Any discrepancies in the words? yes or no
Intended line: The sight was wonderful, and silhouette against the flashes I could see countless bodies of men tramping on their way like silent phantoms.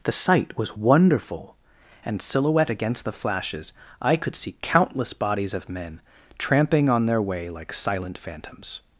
no